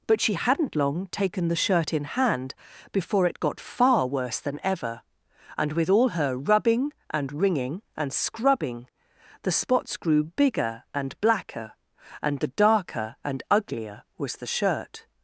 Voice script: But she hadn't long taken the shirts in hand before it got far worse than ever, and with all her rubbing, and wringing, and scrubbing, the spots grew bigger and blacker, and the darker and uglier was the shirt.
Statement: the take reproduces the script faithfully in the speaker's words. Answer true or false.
false